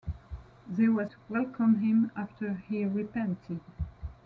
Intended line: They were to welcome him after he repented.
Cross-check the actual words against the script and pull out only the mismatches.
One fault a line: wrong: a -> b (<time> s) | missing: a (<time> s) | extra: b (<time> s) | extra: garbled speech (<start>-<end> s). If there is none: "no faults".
no faults